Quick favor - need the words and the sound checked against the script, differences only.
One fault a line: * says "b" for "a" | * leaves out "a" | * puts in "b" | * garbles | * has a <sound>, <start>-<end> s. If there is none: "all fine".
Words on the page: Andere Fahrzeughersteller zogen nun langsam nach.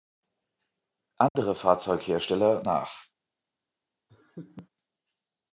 * has a dropout, 1.3-1.4 s
* leaves out "zogen nun langsam"
* has a laugh, 4.1-4.7 s